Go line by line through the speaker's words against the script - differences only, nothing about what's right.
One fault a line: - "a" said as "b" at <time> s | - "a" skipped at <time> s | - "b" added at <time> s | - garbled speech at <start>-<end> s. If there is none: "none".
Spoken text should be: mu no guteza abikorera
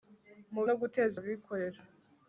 none